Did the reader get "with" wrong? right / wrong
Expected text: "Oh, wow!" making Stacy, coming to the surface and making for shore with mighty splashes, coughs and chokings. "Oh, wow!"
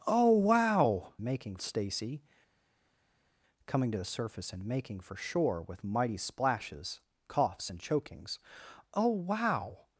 right